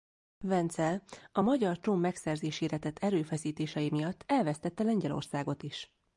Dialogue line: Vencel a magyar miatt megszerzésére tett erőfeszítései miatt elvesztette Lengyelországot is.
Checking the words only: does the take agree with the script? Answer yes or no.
no